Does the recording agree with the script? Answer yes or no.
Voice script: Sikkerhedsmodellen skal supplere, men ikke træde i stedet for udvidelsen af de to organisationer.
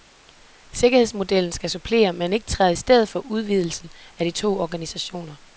yes